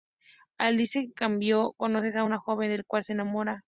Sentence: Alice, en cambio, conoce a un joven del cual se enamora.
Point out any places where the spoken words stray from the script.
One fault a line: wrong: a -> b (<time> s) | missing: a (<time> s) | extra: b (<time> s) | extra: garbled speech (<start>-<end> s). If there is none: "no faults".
no faults